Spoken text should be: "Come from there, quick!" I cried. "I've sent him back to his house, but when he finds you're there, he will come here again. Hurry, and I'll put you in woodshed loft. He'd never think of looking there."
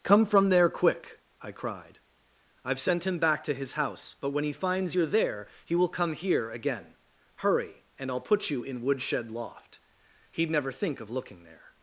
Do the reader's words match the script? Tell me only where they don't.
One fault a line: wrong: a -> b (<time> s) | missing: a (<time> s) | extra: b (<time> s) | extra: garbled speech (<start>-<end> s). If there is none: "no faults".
no faults